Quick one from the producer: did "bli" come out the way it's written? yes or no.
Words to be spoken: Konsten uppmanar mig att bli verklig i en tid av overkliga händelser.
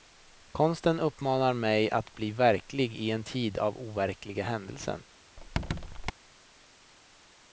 yes